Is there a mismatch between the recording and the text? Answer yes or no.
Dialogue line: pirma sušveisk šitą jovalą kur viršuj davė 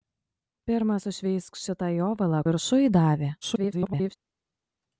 yes